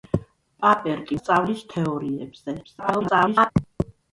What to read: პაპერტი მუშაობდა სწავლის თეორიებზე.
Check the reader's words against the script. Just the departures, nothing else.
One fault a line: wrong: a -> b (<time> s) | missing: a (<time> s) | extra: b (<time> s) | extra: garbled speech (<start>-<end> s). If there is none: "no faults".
missing: მუშაობდა (1.2 s)
extra: garbled speech (2.6-3.5 s)